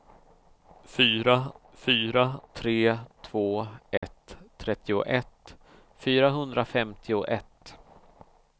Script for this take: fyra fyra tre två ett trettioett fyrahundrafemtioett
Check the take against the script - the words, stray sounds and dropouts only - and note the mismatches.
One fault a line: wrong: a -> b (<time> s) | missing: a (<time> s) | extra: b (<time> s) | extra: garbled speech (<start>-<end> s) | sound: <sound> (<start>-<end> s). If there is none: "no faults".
sound: dropout (4.0-4.0 s)